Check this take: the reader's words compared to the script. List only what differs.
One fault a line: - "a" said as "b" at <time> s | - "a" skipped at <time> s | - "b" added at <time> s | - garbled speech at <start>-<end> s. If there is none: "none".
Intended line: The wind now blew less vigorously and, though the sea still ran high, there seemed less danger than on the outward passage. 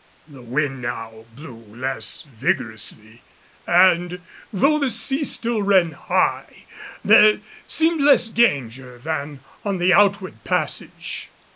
none